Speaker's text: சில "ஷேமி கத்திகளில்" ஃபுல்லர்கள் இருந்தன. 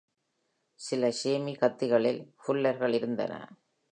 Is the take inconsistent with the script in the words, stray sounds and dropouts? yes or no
no